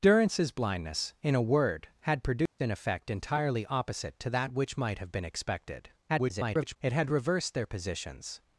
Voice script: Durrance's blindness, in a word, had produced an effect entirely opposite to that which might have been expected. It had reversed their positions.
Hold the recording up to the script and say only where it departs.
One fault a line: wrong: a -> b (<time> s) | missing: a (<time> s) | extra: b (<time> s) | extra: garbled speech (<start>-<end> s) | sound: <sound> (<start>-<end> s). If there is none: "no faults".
sound: dropout (2.5-2.6 s)
extra: garbled speech (6.1-6.8 s)